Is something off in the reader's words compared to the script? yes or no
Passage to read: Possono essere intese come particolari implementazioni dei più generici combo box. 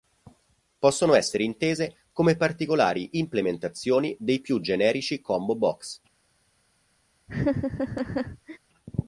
no